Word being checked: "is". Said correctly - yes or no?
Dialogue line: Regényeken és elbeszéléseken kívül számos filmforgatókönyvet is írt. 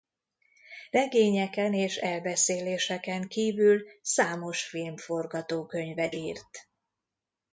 no